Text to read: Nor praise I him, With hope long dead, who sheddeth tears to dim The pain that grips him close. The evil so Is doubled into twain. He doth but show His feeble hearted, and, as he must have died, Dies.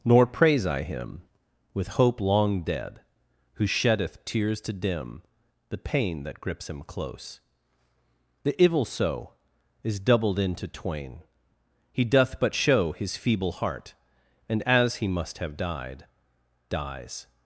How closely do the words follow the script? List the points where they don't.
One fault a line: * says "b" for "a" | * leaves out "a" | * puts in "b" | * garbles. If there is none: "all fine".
* says "heart" for "hearted"